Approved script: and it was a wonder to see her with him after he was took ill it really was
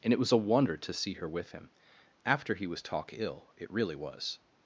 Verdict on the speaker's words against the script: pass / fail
fail